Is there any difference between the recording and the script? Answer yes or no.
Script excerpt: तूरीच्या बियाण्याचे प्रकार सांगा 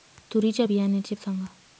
yes